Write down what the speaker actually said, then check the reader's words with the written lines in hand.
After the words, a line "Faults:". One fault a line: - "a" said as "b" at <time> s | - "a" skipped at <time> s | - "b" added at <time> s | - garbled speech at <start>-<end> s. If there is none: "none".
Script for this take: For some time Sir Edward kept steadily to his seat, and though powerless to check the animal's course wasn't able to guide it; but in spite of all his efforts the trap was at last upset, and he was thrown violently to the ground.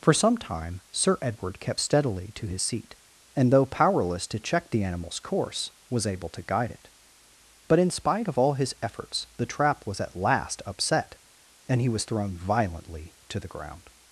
For some time Sir Edward kept steadily to his seat, and though powerless to check the animal's course was able to guide it; but in spite of all his efforts the trap was at last upset, and he was thrown violently to the ground.
Faults:
- "wasn't" said as "was" at 5.9 s